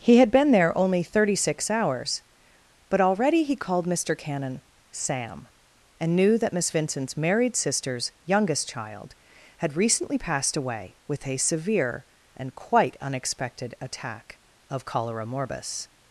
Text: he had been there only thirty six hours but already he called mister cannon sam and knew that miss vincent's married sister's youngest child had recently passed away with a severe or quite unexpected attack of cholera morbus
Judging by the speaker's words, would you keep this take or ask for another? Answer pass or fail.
fail